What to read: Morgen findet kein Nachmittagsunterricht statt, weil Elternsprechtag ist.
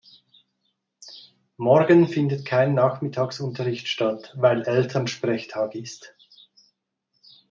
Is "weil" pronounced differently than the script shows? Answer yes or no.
no